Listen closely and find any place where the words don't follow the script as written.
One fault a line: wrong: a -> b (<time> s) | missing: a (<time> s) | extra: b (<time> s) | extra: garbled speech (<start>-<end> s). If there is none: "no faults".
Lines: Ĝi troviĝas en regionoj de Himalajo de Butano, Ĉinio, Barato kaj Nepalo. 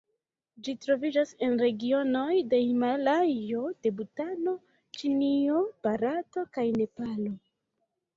no faults